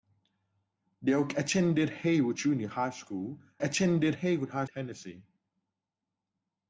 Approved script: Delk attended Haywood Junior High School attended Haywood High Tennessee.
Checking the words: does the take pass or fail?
pass